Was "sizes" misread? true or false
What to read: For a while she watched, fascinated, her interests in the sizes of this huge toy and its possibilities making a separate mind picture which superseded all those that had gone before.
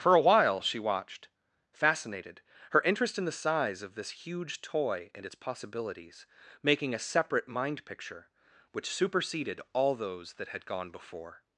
true